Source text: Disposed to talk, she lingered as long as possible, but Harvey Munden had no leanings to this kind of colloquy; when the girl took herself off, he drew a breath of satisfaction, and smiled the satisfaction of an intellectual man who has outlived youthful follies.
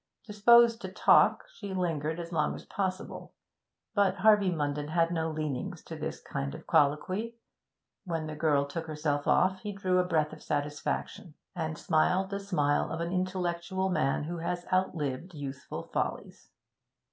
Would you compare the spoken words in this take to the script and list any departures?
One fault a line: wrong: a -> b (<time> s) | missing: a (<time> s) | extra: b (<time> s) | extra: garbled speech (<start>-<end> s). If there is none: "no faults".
wrong: satisfaction -> smile (12.4 s)